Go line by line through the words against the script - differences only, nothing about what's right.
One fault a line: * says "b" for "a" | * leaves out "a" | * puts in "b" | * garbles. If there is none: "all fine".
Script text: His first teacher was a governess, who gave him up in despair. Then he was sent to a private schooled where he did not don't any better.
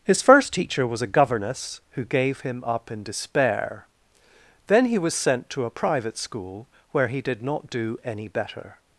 * says "school" for "schooled"
* says "do" for "don't"